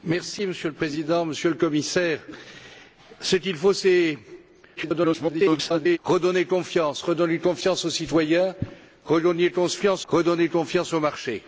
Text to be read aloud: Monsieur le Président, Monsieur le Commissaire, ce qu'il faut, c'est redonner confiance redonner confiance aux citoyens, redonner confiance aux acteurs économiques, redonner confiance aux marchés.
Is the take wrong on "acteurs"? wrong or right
wrong